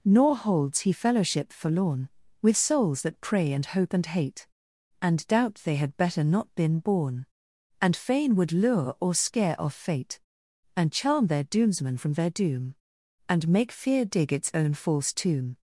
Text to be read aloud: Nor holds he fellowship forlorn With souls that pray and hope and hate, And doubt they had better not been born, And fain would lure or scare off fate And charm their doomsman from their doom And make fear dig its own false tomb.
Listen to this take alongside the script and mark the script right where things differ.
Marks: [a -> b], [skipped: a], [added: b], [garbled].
Nor holds he fellowship forlorn With souls that pray and hope and hate, And doubt they had better not been born, And fain would lure or scare off fate And charm their doomsman from their doom And make fear dig its own false tomb.